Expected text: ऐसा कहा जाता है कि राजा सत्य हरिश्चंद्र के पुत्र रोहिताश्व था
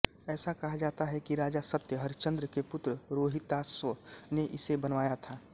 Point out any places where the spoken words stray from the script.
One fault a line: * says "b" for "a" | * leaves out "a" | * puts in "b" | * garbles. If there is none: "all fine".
* puts in "ने इसे बनवाया"